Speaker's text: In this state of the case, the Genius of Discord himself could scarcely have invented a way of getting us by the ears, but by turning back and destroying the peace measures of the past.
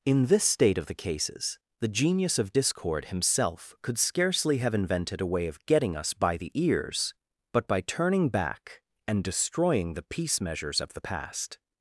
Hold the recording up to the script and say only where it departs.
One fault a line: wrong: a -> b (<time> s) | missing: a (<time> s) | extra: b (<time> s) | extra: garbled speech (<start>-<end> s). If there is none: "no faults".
wrong: case -> cases (0.9 s)